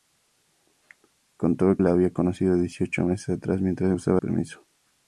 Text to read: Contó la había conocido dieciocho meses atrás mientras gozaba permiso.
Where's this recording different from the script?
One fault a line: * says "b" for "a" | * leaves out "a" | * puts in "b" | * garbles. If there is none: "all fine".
all fine